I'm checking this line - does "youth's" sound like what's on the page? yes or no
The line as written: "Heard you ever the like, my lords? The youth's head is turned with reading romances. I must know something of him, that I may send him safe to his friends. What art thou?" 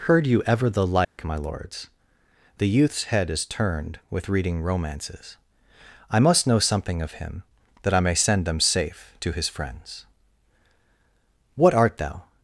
yes